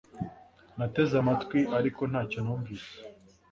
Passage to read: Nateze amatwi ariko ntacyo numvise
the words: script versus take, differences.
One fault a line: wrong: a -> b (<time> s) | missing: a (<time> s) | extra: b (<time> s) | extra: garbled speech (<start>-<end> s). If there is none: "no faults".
no faults